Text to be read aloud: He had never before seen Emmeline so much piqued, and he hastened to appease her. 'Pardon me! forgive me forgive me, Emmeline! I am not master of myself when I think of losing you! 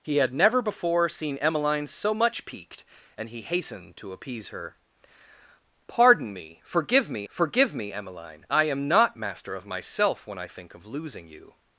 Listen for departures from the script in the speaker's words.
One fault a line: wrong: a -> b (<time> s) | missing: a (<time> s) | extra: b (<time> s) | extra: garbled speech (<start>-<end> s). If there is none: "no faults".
no faults